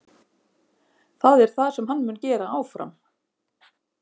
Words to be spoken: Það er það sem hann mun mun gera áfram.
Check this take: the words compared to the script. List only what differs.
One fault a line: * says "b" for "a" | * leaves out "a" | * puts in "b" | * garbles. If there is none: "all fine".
* leaves out "mun"